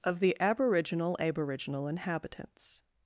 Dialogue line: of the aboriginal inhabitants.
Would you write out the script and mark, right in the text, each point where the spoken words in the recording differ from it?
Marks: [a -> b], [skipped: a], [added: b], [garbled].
of the aboriginal [added: aboriginal] inhabitants.